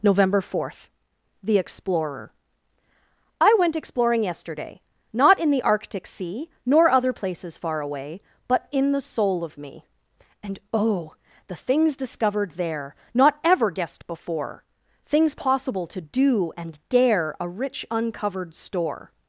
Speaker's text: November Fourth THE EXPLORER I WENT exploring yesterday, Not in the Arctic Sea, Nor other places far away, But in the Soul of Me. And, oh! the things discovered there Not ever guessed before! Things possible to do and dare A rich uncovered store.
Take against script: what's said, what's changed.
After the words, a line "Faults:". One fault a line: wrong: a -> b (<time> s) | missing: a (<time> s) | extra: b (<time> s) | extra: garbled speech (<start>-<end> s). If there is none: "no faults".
November Fourth THE EXPLORER I WENT exploring yesterday, Not in the Arctic Sea, Nor other places far away, But in the Soul of Me. And, oh! the things discovered there Not ever guessed before! Things possible to do and dare A rich uncovered store.
Faults:
no faults